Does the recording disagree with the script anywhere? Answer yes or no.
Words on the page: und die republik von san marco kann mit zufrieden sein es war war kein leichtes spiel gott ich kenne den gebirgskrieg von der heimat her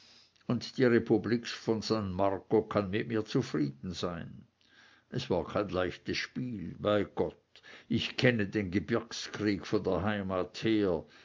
yes